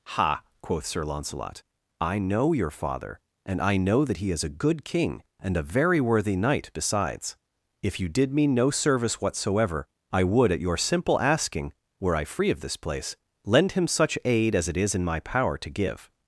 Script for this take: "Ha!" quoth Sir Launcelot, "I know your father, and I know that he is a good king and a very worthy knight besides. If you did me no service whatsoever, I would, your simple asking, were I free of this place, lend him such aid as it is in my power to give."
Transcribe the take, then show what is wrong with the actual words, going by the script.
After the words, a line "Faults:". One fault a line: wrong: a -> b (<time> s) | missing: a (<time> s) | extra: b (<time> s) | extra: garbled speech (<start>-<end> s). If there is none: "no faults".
"Ha!" quoth Sir Launcelot, "I know your father, and I know that he is a good king and a very worthy knight besides. If you did me no service whatsoever, I would, at your simple asking, were I free of this place, lend him such aid as it is in my power to give."
Faults:
extra: at (10.5 s)